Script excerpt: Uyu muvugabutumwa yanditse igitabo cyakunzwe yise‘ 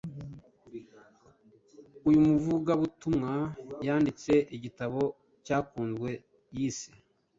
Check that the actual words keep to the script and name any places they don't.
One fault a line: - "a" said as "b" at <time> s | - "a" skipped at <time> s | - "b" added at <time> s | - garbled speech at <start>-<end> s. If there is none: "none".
none